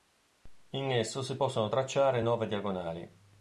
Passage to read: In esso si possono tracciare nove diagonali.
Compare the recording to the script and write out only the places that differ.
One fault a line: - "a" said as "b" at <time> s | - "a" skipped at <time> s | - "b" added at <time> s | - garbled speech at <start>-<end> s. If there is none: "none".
none